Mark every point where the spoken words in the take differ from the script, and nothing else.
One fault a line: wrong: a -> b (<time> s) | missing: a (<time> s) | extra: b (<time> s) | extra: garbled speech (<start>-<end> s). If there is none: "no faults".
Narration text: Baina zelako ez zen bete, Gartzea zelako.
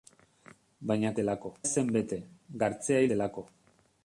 no faults